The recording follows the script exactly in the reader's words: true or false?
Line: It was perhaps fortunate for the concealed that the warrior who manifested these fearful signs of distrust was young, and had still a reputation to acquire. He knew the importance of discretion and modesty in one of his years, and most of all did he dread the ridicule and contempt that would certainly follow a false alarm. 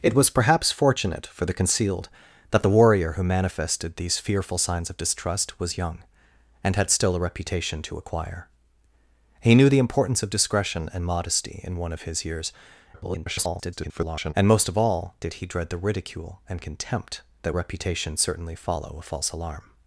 false